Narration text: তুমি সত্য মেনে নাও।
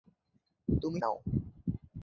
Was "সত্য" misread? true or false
true